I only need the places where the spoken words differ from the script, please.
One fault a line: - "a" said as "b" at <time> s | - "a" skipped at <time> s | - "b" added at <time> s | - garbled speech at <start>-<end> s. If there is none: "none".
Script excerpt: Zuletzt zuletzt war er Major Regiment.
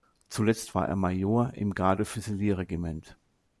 - "zuletzt" skipped at 0.7 s
- "im Garde Füsilier" added at 1.5 s